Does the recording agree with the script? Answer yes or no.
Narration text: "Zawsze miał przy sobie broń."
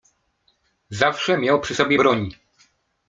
yes